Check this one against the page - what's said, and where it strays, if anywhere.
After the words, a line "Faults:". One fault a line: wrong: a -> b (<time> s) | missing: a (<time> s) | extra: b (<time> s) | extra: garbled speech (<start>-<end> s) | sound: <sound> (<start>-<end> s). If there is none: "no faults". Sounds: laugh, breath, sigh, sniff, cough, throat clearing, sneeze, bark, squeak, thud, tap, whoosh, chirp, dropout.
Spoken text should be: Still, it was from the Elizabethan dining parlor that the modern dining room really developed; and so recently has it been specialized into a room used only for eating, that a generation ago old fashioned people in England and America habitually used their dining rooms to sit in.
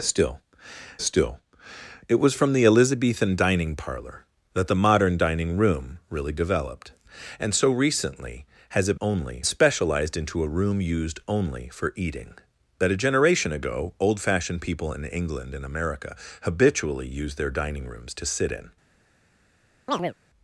Still still, it was from the Elizabethan dining parlor that the modern dining room really developed; and so recently has it only specialized into a room used only for eating, that a generation ago old fashioned people in England and America habitually used their dining rooms to sit in.
Faults:
extra: still (1.0 s)
wrong: been -> only (9.0 s)
sound: chirp (19.9-20.1 s)